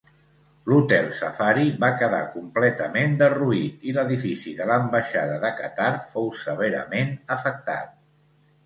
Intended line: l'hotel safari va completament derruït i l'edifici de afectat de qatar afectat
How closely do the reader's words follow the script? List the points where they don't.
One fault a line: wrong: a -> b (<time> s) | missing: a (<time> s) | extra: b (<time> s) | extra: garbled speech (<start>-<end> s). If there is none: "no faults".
extra: quedar (2.0 s)
wrong: afectat -> l'ambaixada (4.7 s)
extra: fou severament (6.1 s)